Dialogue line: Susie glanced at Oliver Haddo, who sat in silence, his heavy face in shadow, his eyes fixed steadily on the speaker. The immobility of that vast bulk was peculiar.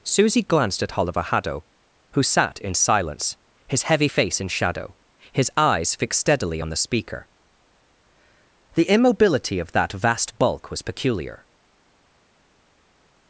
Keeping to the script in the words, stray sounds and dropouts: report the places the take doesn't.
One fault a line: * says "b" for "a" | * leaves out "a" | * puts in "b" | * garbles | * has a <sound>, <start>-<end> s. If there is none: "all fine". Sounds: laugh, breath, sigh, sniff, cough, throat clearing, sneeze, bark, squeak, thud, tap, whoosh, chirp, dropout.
all fine